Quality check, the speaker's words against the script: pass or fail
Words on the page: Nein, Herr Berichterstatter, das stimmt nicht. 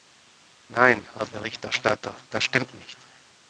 pass